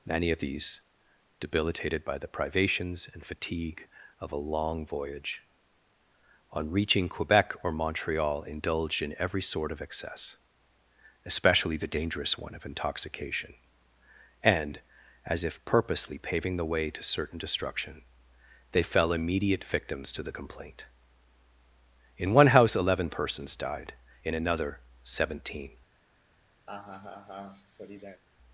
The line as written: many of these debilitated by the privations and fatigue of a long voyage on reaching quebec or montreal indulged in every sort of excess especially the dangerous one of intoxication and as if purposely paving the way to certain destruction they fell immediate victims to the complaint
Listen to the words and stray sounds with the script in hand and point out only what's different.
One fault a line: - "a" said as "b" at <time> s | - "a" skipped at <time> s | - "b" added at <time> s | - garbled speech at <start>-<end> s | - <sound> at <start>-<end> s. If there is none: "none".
- "in one house eleven persons died in another seventeen" added at 22.2 s
- laugh at 26.7-28.2 s